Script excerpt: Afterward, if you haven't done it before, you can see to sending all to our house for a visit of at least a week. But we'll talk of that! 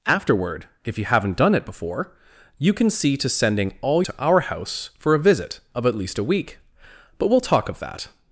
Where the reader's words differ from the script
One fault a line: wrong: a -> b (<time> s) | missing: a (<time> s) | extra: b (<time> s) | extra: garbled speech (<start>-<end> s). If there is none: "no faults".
no faults